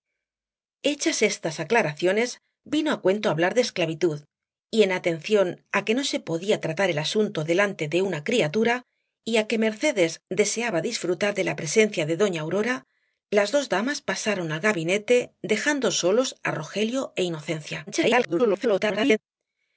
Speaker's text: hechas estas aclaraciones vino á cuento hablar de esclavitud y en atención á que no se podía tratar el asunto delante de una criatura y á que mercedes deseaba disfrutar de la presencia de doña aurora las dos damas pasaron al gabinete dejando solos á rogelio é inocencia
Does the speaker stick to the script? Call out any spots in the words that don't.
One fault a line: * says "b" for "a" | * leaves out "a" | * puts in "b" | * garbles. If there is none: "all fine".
* garbles